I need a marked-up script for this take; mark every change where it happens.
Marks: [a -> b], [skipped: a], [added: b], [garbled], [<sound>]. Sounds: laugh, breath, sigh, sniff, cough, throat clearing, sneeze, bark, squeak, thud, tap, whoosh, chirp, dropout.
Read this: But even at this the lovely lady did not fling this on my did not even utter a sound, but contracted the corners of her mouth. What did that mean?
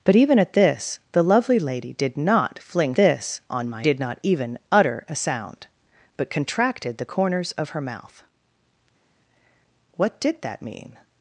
But even at this the lovely lady did not fling this on my did not even utter a sound, but contracted the corners of her mouth. What did that mean?